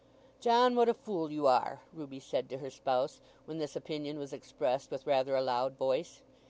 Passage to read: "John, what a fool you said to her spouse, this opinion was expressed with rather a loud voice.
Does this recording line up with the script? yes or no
no